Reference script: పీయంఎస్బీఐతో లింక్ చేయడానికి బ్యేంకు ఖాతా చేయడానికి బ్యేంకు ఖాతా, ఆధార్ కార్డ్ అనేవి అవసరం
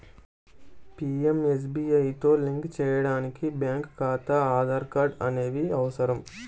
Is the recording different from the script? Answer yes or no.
yes